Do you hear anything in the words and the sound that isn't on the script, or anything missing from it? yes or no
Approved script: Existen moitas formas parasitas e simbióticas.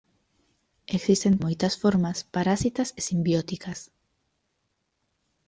no